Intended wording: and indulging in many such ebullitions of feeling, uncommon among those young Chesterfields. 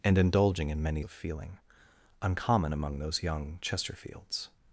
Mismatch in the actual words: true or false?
true